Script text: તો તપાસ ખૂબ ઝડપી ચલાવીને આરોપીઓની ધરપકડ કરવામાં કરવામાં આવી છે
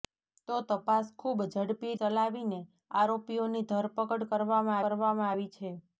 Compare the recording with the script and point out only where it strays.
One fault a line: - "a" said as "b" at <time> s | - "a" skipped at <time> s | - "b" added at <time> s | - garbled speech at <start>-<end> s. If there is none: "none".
none